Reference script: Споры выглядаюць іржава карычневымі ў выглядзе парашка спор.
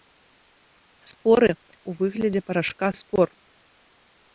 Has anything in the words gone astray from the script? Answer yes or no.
yes